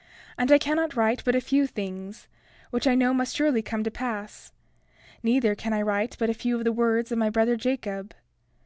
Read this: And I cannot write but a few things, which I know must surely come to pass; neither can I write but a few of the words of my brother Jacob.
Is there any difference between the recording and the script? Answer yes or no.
no